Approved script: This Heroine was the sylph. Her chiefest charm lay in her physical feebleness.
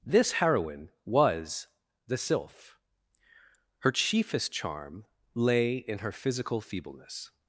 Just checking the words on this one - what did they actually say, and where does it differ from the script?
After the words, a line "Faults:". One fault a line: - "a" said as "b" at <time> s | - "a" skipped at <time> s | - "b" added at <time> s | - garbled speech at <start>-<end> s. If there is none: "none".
This Heroine was the sylph. Her chiefest charm lay in her physical feebleness.
Faults:
none